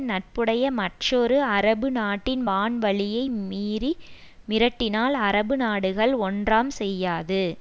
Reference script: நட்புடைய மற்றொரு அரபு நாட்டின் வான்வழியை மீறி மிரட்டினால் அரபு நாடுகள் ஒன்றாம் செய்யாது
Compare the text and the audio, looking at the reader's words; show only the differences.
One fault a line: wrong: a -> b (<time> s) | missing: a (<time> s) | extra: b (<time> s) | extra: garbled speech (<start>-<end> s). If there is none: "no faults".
no faults